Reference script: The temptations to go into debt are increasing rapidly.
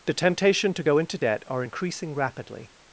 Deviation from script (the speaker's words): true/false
true